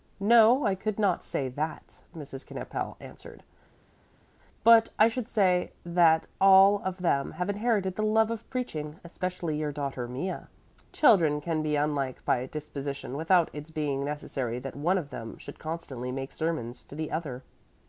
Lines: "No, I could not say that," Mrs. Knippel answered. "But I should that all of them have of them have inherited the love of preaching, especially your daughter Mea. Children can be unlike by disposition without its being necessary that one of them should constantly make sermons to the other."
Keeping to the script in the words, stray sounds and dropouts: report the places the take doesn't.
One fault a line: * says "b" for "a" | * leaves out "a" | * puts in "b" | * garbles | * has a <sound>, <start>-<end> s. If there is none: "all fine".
* puts in "say"
* leaves out "of them have"